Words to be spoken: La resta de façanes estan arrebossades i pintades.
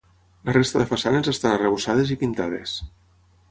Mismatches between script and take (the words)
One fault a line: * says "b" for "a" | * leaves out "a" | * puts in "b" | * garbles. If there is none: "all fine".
all fine